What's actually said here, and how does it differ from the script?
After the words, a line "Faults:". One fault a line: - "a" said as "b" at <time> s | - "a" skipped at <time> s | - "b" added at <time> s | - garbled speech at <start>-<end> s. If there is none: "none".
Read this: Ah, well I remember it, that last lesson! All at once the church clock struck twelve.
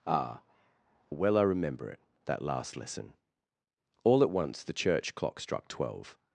Ah, well I remember it, that last lesson! All at once the church clock struck twelve.
Faults:
none